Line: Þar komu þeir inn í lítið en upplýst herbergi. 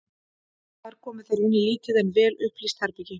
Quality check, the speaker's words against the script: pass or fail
fail